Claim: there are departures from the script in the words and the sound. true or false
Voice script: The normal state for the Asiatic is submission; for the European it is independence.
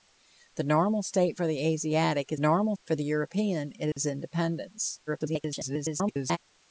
true